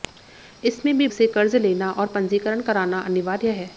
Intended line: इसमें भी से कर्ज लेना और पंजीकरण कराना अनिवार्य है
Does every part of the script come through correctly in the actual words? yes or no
yes